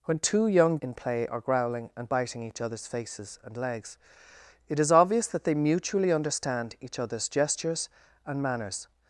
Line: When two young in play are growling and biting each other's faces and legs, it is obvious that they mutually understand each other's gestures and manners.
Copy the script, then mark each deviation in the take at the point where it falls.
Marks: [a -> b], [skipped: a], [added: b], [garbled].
When two young in play are growling and biting each other's faces and legs, it is obvious that they mutually understand each other's gestures and manners.